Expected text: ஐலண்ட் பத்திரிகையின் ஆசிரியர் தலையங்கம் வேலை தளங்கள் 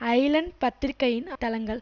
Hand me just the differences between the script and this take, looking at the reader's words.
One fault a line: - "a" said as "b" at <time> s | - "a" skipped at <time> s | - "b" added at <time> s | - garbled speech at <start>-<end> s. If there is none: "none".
- "ஆசிரியர் தலையங்கம் வேலை" skipped at 1.3 s